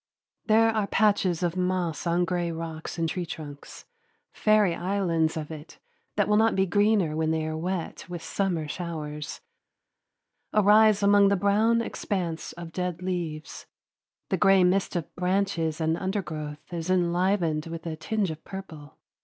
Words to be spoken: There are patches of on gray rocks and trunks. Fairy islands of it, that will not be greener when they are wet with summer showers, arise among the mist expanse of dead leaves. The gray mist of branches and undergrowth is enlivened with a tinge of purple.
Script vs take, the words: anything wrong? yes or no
yes